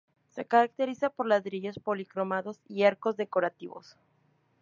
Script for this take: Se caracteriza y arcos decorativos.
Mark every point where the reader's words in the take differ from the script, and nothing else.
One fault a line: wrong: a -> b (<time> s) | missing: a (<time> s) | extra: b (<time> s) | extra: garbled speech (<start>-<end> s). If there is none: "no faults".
extra: por ladrillos policromados (1.1 s)